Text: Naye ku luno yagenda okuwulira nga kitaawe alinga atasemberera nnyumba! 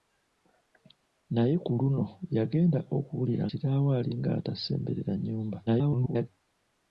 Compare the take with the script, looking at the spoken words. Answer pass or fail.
fail